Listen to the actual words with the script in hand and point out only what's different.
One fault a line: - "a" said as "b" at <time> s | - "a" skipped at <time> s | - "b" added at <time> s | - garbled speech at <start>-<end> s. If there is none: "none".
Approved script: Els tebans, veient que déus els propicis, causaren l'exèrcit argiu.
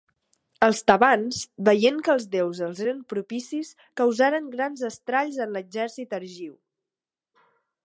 - "els" added at 2.1 s
- "eren" added at 2.8 s
- "grans estralls en" added at 4.5 s